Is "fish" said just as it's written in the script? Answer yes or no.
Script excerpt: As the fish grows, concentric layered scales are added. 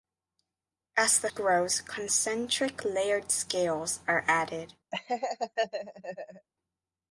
no